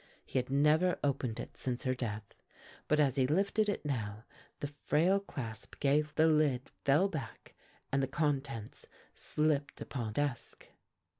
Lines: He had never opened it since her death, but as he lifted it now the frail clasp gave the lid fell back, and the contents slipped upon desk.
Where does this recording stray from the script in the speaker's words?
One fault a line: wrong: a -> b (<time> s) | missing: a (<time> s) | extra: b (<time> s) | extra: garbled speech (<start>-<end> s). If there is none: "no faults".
no faults